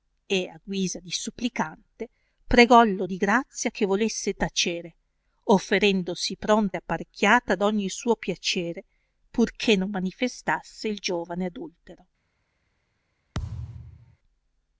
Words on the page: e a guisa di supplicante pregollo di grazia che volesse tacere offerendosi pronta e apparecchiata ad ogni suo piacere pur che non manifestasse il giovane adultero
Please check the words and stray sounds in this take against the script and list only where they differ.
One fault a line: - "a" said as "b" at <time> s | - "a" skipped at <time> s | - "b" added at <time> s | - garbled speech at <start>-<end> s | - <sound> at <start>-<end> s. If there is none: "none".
- thud at 13.3-14.2 s